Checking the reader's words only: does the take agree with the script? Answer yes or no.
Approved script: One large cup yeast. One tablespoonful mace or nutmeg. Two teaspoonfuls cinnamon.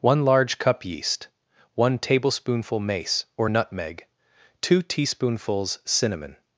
yes